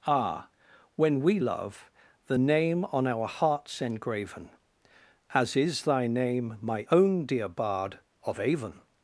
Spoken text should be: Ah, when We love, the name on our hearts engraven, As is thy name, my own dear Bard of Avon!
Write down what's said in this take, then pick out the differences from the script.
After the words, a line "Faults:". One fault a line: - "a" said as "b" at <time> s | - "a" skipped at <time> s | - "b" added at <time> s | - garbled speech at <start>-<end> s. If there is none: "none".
Ah, when We love, the name on our hearts engraven, As is thy name, my own dear Bard of Avon!
Faults:
none